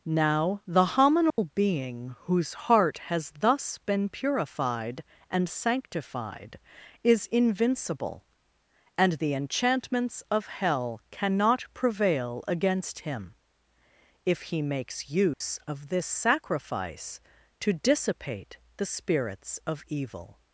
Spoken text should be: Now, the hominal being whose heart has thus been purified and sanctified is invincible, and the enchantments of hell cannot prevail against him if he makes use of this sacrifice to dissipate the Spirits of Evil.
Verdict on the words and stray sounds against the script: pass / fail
fail